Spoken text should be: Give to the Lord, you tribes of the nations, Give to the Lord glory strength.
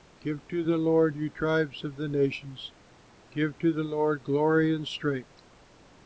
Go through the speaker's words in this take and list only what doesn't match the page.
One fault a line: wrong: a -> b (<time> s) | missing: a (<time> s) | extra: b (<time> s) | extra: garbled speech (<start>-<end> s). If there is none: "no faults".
extra: and (4.7 s)